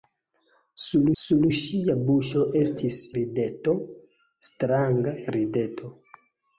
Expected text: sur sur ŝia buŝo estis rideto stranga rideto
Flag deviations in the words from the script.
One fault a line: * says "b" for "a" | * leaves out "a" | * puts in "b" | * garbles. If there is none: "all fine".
all fine